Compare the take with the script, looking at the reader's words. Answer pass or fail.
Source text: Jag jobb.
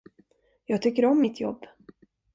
fail